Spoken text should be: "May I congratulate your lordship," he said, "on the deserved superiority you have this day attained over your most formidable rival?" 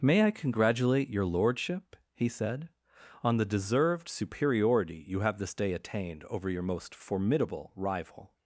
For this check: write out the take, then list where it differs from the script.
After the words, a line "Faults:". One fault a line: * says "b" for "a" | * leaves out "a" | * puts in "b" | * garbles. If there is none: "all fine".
"May I congratulate your lordship," he said, "on the deserved superiority you have this day attained over your most formidable rival?"
Faults:
all fine